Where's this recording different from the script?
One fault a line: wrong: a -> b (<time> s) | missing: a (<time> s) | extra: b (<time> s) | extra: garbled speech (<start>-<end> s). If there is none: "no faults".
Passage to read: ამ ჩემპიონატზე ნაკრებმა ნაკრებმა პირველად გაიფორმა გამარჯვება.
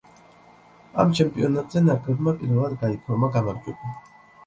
missing: ნაკრებმა (2.4 s)